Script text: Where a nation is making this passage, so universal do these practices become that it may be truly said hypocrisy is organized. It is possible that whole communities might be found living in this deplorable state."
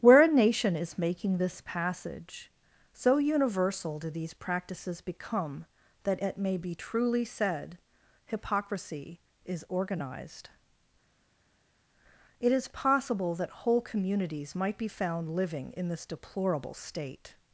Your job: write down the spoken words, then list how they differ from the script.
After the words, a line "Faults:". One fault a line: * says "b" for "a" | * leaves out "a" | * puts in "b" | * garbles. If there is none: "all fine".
Where a nation is making this passage, so universal do these practices become that it may be truly said hypocrisy is organized. It is possible that whole communities might be found living in this deplorable state."
Faults:
all fine